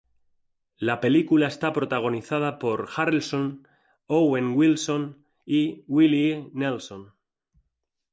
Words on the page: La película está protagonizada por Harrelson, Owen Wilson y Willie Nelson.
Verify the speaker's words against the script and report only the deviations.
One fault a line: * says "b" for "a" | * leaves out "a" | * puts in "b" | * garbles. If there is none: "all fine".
all fine